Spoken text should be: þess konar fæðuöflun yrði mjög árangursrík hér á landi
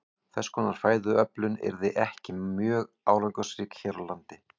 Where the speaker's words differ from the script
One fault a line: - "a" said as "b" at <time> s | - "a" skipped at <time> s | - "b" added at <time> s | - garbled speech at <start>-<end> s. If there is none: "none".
- "ekki" added at 2.0 s